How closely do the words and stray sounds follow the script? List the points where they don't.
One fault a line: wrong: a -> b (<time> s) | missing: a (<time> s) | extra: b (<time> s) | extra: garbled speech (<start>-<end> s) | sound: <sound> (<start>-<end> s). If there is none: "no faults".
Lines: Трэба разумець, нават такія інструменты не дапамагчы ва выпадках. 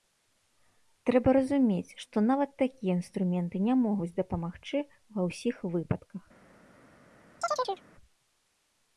extra: што (2.0 s)
extra: могуць (3.9 s)
extra: ўсіх (5.3 s)
sound: chirp (7.4-7.8 s)